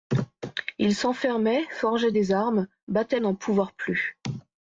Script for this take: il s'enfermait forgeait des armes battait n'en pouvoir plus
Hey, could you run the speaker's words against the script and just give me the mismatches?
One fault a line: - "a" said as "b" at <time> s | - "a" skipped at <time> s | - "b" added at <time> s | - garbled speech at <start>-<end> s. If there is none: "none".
none